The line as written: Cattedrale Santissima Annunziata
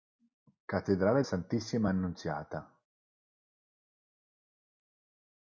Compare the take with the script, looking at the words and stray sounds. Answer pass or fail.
pass